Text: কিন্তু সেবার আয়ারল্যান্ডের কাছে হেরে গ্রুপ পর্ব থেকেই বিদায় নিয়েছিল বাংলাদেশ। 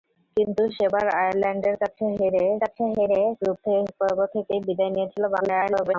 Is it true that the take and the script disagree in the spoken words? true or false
true